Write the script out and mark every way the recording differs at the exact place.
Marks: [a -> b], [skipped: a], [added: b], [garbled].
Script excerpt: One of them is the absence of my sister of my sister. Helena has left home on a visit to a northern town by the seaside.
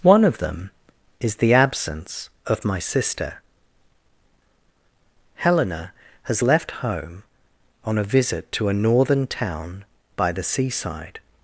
One of them is the absence of my sister [skipped: of my sister.] Helena has left home on a visit to a northern town by the seaside.